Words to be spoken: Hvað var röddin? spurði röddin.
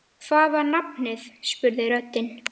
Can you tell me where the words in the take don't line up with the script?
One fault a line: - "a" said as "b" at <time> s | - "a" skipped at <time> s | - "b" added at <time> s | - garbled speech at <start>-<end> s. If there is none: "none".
- "röddin" said as "nafnið" at 0.7 s